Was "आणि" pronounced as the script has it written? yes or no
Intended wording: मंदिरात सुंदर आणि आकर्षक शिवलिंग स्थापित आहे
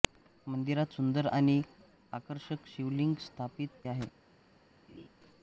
yes